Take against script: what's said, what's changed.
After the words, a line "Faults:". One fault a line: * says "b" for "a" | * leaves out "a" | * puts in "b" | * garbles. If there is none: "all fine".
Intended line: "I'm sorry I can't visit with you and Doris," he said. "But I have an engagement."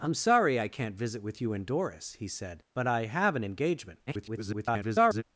"I'm sorry I can't visit with you and Doris," he said. "But I have an engagement." [garbled]
Faults:
* garbles